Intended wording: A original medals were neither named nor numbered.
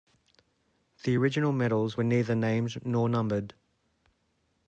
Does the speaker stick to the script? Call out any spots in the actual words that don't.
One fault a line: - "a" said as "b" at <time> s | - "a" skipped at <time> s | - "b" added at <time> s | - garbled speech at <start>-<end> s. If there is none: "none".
- "A" said as "The" at 1.0 s